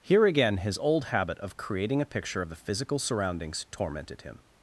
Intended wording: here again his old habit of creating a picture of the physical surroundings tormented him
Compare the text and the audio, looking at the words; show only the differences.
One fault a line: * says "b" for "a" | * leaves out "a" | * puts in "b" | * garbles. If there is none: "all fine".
all fine